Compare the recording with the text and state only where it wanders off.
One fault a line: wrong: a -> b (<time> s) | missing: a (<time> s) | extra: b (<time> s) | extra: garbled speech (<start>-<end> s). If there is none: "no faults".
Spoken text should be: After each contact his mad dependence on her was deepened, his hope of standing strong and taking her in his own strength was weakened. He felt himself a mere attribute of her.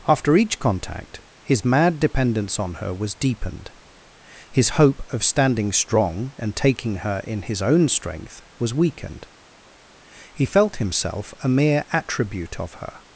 no faults